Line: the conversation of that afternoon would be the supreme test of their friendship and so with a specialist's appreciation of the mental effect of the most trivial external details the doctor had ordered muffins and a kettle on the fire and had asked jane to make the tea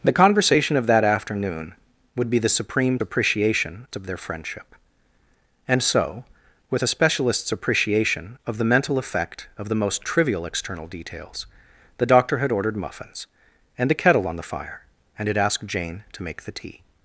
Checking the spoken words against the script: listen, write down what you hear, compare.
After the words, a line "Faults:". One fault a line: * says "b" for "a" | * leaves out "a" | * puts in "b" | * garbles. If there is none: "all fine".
the conversation of that afternoon would be the supreme appreciation of their friendship and so with a specialist's appreciation of the mental effect of the most trivial external details the doctor had ordered muffins and a kettle on the fire and had asked jane to make the tea
Faults:
* says "appreciation" for "test"